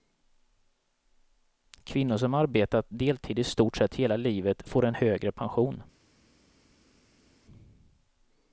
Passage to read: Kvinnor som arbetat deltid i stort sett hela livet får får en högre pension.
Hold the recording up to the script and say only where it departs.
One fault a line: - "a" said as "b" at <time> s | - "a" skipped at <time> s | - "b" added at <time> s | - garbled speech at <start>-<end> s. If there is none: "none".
- "får" skipped at 4.8 s